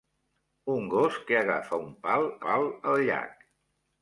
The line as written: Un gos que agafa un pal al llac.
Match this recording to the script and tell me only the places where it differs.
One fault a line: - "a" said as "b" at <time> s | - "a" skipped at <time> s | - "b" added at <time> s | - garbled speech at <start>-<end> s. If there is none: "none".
- "pal" added at 2.5 s